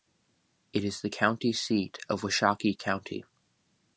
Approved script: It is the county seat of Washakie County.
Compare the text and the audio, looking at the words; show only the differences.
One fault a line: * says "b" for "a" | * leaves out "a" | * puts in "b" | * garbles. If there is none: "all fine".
all fine